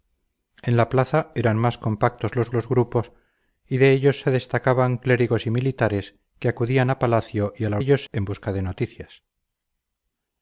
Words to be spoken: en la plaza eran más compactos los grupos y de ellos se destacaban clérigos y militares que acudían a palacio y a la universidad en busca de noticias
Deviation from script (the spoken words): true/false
true